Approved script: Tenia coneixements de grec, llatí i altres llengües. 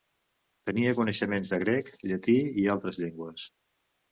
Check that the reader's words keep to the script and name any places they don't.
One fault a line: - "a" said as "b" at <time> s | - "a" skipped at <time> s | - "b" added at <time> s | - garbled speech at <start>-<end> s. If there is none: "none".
none